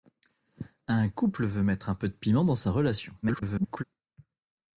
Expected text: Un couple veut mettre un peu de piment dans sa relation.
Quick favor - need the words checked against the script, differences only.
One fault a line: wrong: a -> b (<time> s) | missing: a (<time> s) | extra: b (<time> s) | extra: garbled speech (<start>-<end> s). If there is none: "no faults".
extra: garbled speech (3.2-3.8 s)